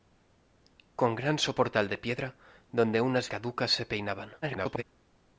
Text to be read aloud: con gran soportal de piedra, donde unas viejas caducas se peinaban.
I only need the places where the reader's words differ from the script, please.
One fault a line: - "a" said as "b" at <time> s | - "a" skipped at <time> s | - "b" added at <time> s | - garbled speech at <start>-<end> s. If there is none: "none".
- "viejas" skipped at 3.3 s
- garbled speech at 4.4-4.8 s